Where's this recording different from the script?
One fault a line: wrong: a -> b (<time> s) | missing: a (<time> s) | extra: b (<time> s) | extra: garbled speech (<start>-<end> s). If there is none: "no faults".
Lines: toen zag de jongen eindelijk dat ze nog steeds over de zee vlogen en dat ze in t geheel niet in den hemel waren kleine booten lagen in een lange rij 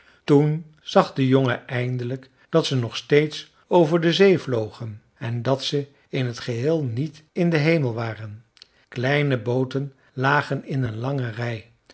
no faults